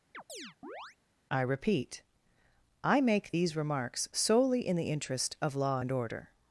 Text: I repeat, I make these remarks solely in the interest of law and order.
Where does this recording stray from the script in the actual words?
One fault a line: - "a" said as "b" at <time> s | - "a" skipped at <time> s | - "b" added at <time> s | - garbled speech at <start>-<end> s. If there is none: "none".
none